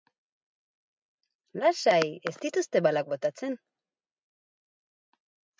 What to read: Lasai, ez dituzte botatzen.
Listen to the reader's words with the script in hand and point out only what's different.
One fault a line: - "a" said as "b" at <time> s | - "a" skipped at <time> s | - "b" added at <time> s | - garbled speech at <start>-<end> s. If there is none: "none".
- "balak" added at 2.9 s